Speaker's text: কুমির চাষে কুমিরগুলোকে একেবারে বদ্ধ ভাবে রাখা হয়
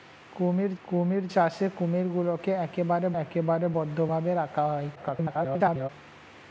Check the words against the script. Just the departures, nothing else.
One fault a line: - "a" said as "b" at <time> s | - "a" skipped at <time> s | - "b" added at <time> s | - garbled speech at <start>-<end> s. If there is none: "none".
- "কুমির" added at 0.8 s
- "একেবারে" added at 3.2 s
- garbled speech at 4.9-5.9 s